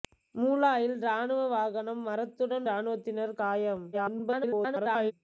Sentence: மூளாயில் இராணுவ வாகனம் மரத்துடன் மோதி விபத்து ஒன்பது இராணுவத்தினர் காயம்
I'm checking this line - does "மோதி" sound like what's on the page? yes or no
no